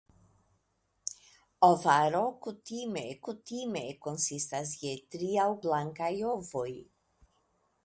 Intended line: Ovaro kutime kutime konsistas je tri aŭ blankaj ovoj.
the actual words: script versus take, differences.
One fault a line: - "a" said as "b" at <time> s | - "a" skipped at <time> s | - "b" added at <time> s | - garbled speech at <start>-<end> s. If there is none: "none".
none